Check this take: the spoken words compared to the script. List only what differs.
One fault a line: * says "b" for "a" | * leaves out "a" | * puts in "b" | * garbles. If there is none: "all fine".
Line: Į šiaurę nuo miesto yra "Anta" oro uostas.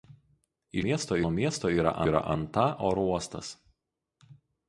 * says "miesto" for "šiaurę"
* puts in "yra"